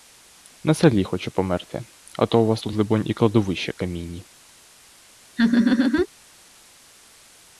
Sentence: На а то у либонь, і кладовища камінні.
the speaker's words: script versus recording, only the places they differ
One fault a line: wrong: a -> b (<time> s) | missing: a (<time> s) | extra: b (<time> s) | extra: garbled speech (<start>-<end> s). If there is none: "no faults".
extra: селі хочу померти (0.7 s)
extra: вас тут (2.5 s)